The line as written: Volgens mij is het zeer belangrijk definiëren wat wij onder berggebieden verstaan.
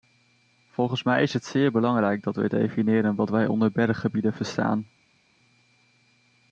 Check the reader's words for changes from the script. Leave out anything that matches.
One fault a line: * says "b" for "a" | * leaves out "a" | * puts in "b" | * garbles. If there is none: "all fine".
* puts in "dat wij"